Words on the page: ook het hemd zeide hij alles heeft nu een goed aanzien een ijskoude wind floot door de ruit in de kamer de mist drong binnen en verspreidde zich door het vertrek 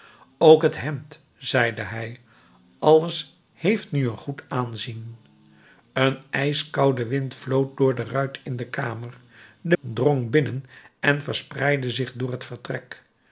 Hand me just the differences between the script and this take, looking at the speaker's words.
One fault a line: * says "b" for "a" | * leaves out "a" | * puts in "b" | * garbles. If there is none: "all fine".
* leaves out "mist"